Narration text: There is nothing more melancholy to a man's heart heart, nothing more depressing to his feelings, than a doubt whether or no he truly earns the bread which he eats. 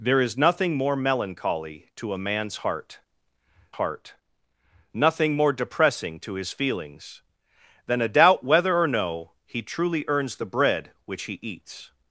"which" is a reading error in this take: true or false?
false